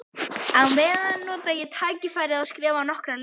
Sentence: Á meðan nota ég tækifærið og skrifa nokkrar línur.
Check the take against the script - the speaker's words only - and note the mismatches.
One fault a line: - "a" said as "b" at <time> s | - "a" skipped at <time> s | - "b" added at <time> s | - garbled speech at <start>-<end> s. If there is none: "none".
none